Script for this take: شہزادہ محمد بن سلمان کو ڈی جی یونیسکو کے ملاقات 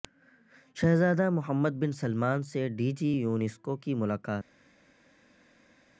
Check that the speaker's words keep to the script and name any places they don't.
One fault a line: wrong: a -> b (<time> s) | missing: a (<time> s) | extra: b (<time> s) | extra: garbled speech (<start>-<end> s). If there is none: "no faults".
wrong: کو -> سے (2.4 s)
wrong: کے -> کی (3.8 s)